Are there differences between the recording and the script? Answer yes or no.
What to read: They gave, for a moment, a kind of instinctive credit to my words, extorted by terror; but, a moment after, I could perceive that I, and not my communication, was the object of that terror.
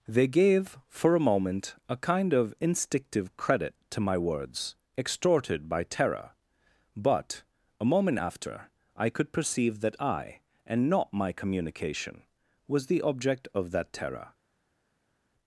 no